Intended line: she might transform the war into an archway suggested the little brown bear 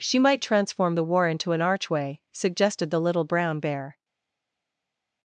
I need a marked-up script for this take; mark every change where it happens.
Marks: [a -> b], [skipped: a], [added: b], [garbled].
she might transform the war into an archway suggested the little brown bear